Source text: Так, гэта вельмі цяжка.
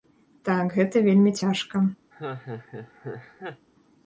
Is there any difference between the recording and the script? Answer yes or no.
no